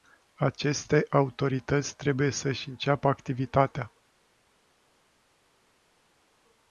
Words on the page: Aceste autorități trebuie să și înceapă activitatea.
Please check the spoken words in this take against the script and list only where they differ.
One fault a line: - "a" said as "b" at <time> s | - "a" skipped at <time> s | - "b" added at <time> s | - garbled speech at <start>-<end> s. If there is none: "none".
none